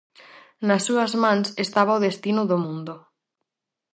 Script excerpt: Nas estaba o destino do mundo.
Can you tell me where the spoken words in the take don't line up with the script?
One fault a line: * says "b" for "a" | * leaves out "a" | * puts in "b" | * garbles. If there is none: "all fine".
* puts in "súas mans"